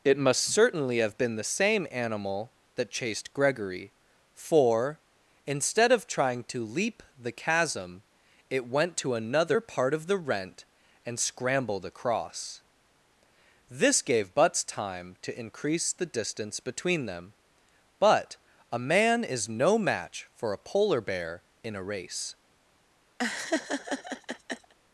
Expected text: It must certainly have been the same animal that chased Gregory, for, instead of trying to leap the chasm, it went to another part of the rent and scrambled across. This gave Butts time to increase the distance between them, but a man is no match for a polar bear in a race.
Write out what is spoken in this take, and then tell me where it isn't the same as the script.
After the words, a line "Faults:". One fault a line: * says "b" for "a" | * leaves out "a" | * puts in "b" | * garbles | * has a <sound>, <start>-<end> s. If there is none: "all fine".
It must certainly have been the same animal that chased Gregory, for, instead of trying to leap the chasm, it went to another part of the rent and scrambled across. This gave Butts time to increase the distance between them, but a man is no match for a polar bear in a race.
Faults:
* has a laugh, 23.2-24.7 s